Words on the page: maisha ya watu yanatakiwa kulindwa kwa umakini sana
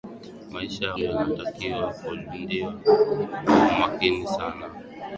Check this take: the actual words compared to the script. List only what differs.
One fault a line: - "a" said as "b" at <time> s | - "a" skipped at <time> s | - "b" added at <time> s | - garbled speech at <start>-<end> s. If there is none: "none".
- "watu" skipped at 0.9 s